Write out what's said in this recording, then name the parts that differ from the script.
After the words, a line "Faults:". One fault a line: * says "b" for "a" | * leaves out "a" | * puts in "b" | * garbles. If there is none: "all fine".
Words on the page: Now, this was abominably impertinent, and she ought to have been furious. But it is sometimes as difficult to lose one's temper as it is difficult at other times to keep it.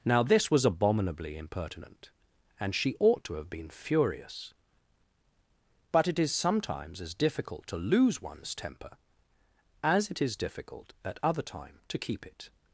Now, this was abominably impertinent, and she ought to have been furious. But it is sometimes as difficult to lose one's temper as it is difficult at other time to keep it.
Faults:
* says "time" for "times"